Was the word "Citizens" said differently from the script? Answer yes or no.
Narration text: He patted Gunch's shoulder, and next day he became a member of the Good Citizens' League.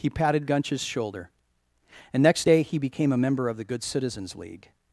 no